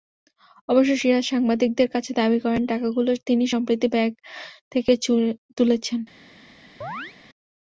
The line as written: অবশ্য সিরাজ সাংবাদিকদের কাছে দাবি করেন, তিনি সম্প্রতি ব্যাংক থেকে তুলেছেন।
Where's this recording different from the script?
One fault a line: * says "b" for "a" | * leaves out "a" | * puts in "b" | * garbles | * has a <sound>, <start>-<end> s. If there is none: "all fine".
* puts in "টাকাগুলো"
* has a chirp, 6.8-7.2 s